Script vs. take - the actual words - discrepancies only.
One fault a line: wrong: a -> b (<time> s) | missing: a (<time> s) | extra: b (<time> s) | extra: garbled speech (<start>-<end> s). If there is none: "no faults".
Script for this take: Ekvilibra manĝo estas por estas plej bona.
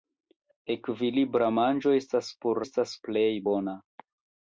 no faults